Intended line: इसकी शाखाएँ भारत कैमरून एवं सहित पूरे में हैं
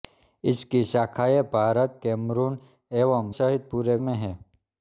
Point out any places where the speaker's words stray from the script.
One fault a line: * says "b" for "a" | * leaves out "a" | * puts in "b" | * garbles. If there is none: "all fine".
all fine